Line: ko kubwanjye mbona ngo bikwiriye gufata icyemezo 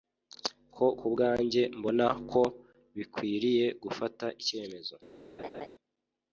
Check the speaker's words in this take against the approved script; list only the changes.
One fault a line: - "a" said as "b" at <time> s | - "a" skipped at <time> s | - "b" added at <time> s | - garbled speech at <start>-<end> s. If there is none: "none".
- "ngo" said as "ko" at 2.3 s